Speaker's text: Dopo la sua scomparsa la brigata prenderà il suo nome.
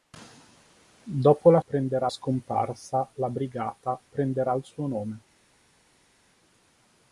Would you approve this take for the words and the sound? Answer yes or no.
no